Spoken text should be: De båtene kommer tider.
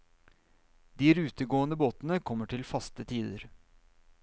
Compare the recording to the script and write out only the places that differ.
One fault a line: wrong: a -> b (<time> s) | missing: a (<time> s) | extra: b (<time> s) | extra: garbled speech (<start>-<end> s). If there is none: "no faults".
extra: rutegående (1.2 s)
extra: til faste (2.5 s)